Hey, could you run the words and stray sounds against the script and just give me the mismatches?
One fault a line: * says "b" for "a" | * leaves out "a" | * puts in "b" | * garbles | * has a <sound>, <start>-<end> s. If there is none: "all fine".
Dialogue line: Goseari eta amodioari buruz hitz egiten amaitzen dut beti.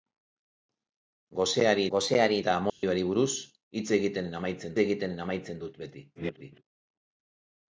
* puts in "goseari"
* has a dropout, 2.7-2.8 s
* puts in "egiten amaitzen"
* garbles